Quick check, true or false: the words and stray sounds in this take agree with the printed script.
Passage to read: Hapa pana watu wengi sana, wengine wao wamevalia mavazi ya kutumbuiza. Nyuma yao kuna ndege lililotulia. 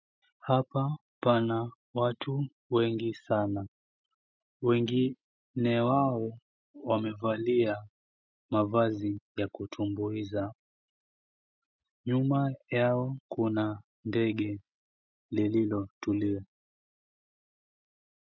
true